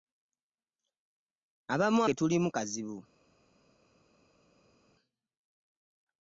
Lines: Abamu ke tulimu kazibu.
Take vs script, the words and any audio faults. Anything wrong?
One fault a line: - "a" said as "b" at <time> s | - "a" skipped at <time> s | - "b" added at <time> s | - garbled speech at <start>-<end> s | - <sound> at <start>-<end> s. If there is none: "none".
none